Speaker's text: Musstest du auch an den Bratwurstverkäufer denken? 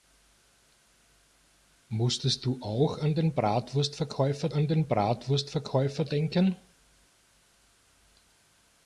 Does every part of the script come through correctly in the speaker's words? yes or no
no